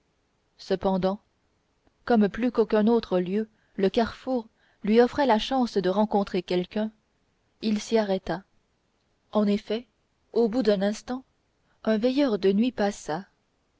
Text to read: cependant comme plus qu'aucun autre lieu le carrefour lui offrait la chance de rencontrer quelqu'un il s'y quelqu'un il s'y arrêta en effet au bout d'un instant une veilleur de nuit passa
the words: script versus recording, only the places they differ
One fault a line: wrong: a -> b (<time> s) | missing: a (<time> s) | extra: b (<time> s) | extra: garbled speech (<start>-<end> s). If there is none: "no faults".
missing: quelqu'un il s'y (8.0 s)
wrong: une -> un (11.8 s)